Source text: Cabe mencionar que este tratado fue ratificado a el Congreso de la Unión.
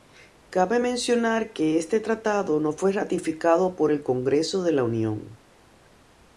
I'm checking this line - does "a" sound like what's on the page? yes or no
no